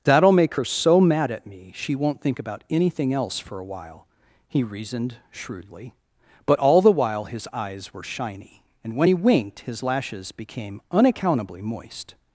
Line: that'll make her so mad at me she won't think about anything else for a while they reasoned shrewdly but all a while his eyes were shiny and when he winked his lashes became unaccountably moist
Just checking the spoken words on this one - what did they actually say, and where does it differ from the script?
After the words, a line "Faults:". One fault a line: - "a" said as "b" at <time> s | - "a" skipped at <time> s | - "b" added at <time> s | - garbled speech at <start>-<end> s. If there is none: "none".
that'll make her so mad at me she won't think about anything else for a while he reasoned shrewdly but all the while his eyes were shiny and when he winked his lashes became unaccountably moist
Faults:
- "they" said as "he" at 4.5 s
- "a" said as "the" at 6.8 s